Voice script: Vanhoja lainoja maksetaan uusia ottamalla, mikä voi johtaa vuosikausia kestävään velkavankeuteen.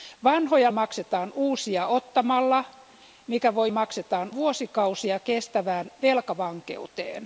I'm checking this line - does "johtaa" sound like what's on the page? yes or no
no